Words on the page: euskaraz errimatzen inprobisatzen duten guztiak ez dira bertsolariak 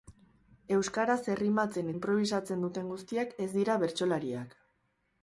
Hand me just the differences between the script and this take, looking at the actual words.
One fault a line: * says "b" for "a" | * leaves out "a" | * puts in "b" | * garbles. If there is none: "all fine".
all fine